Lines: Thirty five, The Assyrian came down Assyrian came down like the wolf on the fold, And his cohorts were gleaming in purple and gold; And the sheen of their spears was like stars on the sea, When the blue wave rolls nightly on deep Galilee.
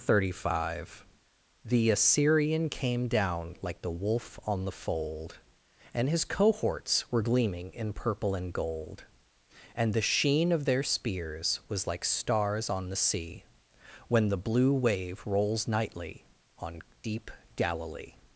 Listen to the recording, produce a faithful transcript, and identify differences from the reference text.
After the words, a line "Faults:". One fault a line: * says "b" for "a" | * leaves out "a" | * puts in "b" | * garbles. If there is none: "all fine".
Thirty five, The Assyrian came down like the wolf on the fold, And his cohorts were gleaming in purple and gold; And the sheen of their spears was like stars on the sea, When the blue wave rolls nightly on deep Galilee.
Faults:
* leaves out "Assyrian came down"